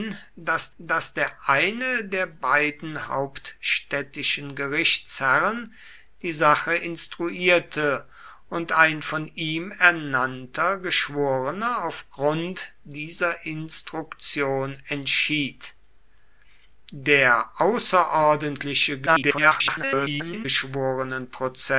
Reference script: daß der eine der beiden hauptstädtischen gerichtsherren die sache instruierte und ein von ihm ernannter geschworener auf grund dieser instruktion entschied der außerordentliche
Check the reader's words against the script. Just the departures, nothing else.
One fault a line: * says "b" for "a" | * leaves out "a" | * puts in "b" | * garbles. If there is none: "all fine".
* puts in "daß"
* garbles